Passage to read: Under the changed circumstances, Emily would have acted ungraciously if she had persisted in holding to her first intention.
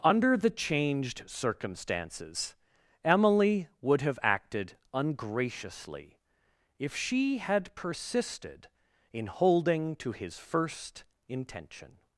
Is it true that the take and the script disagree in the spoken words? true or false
true